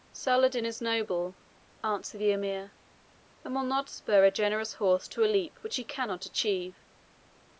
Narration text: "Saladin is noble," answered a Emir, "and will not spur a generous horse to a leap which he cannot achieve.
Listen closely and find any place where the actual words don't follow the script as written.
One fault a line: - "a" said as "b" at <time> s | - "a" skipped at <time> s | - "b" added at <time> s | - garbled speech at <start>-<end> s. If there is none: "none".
- "a" said as "the" at 2.2 s